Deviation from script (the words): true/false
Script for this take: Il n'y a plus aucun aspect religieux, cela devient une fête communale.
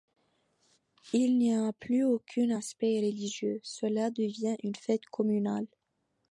false